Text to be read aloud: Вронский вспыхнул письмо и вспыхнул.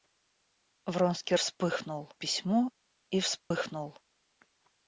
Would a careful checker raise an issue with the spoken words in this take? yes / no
no